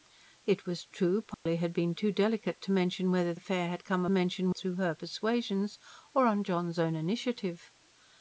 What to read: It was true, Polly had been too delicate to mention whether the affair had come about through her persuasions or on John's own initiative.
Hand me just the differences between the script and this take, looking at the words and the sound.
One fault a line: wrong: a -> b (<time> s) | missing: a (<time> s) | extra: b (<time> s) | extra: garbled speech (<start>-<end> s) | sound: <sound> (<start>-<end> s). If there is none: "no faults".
sound: dropout (1.3-1.5 s)
missing: the (3.4 s)
wrong: about -> mention (4.1 s)